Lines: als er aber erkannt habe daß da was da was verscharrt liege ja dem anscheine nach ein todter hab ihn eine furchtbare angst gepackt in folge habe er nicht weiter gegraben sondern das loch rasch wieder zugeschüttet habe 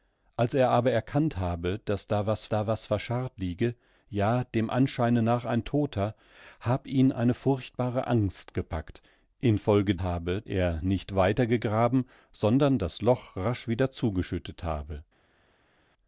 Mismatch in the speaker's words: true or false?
false